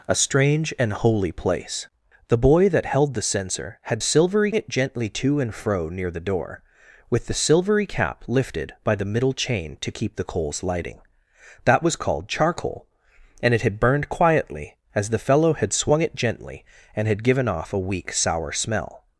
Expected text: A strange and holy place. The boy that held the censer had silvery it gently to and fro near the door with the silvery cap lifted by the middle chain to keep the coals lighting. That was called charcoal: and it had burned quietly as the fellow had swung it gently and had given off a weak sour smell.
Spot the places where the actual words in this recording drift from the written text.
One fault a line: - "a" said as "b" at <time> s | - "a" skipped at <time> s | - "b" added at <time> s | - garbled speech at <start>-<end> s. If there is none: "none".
none